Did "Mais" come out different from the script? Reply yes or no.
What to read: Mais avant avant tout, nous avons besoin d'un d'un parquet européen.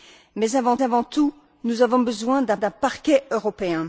no